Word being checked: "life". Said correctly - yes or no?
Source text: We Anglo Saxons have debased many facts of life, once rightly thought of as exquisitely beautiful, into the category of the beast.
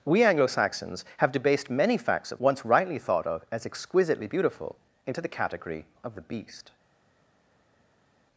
no